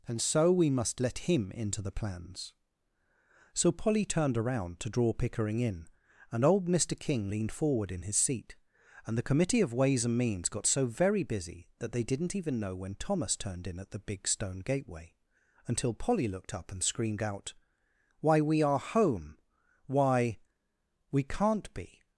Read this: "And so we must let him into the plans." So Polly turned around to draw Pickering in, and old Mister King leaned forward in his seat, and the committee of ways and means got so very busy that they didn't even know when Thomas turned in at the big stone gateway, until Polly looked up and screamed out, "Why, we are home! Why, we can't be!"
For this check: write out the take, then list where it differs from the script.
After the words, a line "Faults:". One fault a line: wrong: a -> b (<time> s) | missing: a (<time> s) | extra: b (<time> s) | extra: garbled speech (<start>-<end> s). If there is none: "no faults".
"And so we must let him into the plans." So Polly turned around to draw Pickering in, and old Mister King leaned forward in his seat, and the committee of ways and means got so very busy that they didn't even know when Thomas turned in at the big stone gateway, until Polly looked up and screamed out, "Why, we are home! Why, we can't be!"
Faults:
no faults